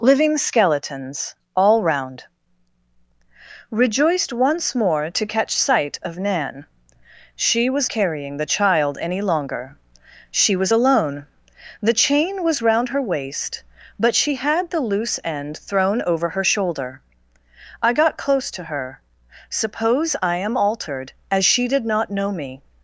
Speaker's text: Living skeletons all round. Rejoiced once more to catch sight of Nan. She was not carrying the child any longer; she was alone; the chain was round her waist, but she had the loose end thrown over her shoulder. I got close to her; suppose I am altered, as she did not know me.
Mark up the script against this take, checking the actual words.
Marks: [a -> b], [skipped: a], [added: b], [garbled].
Living skeletons all round. Rejoiced once more to catch sight of Nan. She was [skipped: not] carrying the child any longer; she was alone; the chain was round her waist, but she had the loose end thrown over her shoulder. I got close to her; suppose I am altered, as she did not know me.